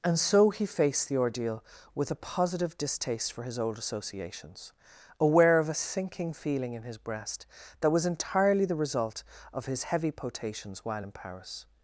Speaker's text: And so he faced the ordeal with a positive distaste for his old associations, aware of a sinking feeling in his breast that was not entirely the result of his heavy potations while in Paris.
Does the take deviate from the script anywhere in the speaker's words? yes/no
yes